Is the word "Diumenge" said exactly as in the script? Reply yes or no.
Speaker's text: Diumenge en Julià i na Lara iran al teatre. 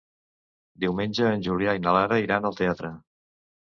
yes